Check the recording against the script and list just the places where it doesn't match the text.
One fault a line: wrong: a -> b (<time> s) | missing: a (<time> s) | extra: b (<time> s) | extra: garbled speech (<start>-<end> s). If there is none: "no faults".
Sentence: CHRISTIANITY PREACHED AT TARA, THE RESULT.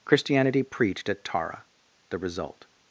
no faults